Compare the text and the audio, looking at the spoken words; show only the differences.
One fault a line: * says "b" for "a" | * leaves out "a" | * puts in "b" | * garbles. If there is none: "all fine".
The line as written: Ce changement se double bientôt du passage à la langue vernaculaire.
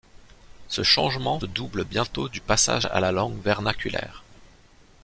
* leaves out "se"